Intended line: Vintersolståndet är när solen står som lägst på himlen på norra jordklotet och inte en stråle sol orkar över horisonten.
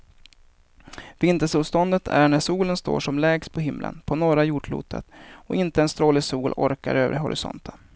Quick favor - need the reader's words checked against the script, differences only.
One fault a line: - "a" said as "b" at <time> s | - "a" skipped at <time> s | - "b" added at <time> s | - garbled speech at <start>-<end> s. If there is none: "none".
none